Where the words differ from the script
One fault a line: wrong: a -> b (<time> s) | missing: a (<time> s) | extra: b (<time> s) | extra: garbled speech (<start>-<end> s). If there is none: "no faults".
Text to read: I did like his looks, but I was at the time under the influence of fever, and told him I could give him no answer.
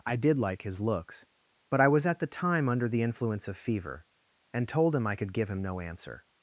no faults